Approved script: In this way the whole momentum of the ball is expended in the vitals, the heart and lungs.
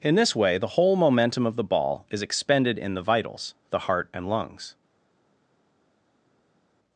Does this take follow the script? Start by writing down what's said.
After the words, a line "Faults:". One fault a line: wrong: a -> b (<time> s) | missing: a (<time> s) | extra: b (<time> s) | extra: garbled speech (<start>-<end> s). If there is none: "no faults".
In this way the whole momentum of the ball is expended in the vitals, the heart and lungs.
Faults:
no faults